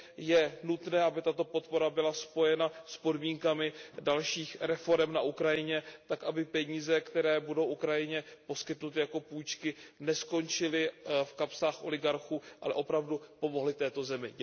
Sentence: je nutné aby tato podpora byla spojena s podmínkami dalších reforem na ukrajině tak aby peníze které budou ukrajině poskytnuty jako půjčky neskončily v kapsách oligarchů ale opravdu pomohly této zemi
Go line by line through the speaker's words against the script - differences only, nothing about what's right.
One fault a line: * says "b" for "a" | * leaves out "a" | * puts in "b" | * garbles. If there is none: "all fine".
all fine